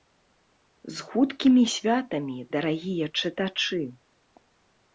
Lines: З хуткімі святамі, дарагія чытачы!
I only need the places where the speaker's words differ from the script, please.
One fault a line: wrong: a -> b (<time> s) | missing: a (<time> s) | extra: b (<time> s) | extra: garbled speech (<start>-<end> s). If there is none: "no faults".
no faults